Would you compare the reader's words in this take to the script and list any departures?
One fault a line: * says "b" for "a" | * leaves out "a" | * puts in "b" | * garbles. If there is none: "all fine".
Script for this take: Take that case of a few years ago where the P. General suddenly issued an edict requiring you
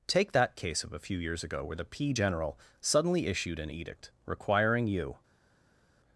all fine